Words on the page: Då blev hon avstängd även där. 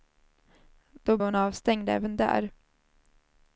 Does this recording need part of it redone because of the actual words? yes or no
yes